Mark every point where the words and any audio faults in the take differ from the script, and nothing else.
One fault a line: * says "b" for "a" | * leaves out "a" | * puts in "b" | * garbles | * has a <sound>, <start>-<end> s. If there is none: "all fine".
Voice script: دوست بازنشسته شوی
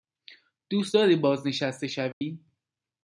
* puts in "داری"
* has a dropout, 2.1-2.2 s